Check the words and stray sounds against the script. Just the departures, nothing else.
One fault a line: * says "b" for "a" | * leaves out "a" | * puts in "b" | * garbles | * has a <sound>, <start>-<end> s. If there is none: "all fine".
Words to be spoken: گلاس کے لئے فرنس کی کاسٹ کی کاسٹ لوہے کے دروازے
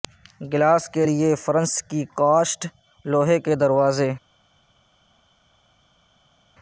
* leaves out "کی کاسٹ"